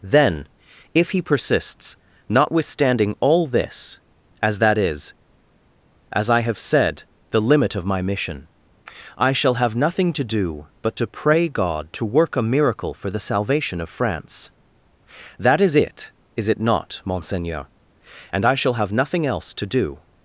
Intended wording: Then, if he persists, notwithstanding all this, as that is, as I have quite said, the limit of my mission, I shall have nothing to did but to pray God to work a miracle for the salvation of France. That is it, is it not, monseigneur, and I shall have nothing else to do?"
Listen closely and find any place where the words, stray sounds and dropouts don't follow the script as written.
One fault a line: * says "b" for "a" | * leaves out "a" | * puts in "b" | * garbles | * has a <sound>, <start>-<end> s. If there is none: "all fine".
* leaves out "quite"
* says "do" for "did"